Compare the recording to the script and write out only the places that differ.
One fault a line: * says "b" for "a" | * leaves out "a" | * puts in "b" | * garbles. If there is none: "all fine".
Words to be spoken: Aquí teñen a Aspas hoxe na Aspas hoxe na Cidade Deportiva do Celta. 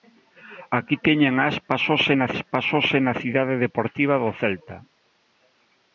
all fine